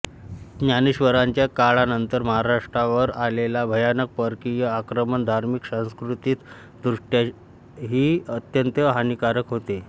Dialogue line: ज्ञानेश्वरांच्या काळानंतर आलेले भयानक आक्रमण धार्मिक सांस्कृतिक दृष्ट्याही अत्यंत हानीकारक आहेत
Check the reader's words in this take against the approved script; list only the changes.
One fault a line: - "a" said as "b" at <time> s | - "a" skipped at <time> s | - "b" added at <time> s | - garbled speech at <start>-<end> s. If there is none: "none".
- "महाराष्ट्रावर" added at 2.2 s
- "परकीय" added at 4.2 s
- "आहेत" said as "होते" at 9.5 s